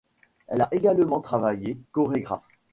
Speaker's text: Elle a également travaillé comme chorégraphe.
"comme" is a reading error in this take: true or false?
true